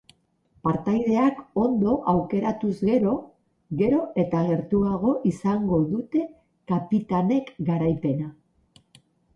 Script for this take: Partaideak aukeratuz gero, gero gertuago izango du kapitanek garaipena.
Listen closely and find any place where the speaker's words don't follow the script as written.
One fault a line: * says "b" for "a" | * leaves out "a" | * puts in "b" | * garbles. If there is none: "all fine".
* puts in "ondo"
* puts in "eta"
* says "dute" for "du"